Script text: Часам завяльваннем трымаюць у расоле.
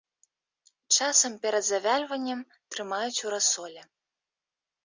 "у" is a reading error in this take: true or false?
false